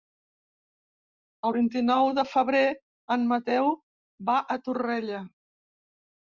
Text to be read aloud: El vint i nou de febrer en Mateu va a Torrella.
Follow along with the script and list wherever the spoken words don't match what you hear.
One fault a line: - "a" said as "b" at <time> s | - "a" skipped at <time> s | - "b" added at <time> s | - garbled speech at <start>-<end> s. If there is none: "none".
none